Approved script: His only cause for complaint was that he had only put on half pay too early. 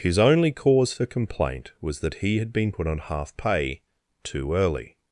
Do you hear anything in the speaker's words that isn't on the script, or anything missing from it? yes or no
yes